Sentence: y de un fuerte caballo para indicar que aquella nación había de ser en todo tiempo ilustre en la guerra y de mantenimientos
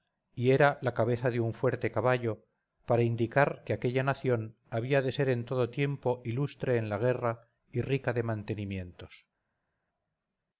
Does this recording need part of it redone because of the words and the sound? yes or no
yes